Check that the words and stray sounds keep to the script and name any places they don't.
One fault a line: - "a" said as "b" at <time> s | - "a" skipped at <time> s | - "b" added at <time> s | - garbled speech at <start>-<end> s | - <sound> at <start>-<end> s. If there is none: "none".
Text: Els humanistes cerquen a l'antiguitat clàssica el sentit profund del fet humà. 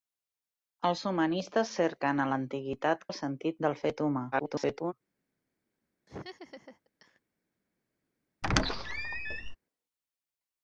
- "clàssica" skipped at 3.0 s
- "profund" skipped at 3.6 s
- garbled speech at 4.3-4.9 s
- laugh at 6.1-7.2 s
- squeak at 8.4-9.6 s